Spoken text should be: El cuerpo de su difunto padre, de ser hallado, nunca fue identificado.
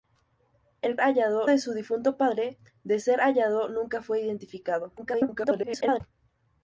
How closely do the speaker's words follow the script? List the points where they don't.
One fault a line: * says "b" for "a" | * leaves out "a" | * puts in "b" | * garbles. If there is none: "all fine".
* says "hallado" for "cuerpo"
* garbles